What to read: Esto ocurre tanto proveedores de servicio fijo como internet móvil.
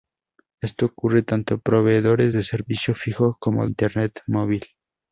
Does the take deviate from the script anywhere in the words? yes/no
no